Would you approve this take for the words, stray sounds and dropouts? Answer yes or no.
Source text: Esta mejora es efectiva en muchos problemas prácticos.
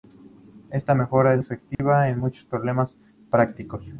no